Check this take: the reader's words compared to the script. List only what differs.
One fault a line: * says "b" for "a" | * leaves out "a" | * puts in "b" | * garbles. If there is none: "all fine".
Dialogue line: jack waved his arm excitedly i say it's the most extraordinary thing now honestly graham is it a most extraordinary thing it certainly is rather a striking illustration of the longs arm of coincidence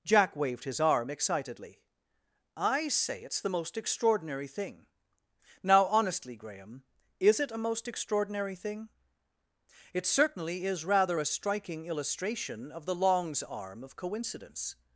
all fine